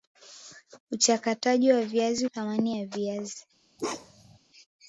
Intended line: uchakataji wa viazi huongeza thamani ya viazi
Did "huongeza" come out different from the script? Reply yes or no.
yes